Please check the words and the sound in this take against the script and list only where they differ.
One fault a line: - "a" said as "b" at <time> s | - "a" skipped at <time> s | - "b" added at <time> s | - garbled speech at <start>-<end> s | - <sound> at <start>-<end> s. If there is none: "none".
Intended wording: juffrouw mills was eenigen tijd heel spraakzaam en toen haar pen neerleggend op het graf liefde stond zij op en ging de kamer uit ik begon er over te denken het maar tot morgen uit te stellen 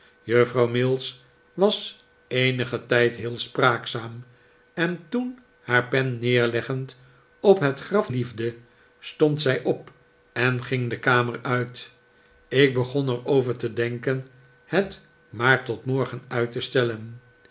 none